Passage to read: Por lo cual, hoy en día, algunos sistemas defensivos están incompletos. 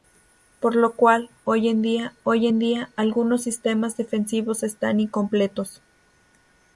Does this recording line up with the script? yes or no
no